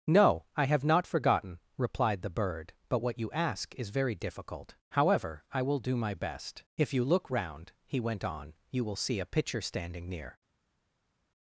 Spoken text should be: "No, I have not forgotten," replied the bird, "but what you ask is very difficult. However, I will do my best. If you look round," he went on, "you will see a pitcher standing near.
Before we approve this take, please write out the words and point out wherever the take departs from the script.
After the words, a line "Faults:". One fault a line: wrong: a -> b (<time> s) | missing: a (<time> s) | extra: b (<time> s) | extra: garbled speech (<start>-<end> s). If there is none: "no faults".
"No, I have not forgotten," replied the bird, "but what you ask is very difficult. However, I will do my best. If you look round," he went on, "you will see a pitcher standing near.
Faults:
no faults